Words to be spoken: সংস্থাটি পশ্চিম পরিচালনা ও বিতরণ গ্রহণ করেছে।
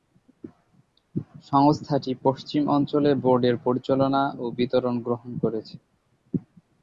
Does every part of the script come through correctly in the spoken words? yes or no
no